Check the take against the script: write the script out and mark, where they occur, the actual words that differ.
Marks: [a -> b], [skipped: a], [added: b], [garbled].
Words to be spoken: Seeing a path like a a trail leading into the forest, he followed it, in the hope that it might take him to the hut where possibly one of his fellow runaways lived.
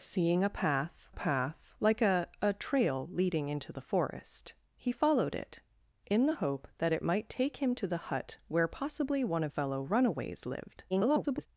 Seeing a path [added: path] like a a trail leading into the forest, he followed it, in the hope that it might take him to the hut where possibly one of [skipped: his] fellow runaways lived. [garbled]